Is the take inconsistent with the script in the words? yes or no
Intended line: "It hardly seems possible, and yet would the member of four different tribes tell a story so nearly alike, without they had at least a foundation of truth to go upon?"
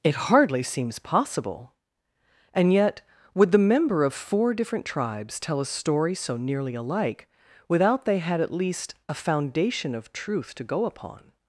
no